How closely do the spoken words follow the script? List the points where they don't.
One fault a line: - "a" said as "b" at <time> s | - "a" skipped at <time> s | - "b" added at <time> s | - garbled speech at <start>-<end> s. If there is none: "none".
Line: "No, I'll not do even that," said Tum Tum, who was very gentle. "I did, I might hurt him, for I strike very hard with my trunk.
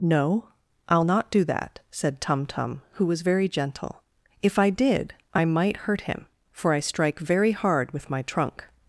- "even" skipped at 1.4 s
- "If" added at 4.4 s